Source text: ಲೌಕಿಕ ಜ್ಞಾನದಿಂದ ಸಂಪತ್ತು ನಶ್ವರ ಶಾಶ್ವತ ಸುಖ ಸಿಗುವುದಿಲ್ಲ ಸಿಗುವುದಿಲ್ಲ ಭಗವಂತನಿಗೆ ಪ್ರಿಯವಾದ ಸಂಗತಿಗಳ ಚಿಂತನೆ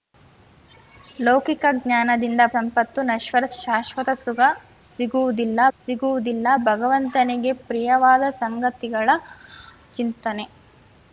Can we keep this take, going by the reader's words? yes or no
yes